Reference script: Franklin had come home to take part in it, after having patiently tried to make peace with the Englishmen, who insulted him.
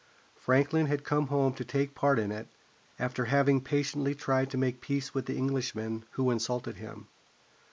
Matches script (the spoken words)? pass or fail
pass